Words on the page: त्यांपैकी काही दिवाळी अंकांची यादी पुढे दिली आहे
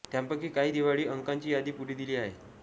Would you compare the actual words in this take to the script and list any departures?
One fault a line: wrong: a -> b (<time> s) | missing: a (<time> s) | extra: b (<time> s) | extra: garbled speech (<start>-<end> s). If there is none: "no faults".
no faults